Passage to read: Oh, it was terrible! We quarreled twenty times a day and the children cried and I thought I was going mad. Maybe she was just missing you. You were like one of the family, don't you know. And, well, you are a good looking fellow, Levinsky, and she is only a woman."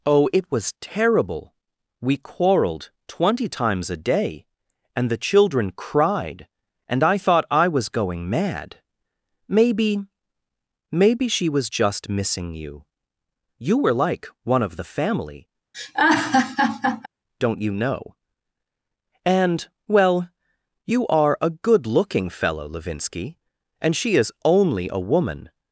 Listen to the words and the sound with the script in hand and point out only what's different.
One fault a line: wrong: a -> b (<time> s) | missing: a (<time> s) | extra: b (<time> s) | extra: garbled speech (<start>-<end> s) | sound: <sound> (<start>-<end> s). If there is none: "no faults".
extra: Maybe (10.9 s)
sound: laugh (15.7-17.1 s)